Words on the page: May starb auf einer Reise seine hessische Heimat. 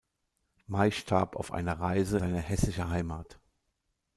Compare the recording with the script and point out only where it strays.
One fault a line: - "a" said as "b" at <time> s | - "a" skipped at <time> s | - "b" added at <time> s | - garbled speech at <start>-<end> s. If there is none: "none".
none